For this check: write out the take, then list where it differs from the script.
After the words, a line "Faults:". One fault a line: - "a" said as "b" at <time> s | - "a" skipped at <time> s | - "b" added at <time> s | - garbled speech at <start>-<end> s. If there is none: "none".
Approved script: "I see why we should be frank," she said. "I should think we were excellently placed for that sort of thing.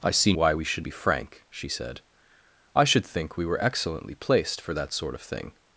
"I see why we should be frank," she said. "I should think we were excellently placed for that sort of thing.
Faults:
none